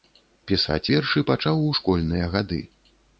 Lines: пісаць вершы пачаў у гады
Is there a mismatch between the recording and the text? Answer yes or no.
yes